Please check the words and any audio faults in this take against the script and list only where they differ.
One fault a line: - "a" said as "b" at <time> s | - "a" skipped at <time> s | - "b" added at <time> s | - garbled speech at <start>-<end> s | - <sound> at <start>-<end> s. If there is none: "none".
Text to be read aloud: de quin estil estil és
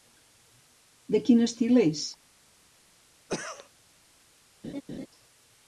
- "estil" skipped at 1.8 s
- cough at 3.3-3.7 s
- laugh at 4.6-5.1 s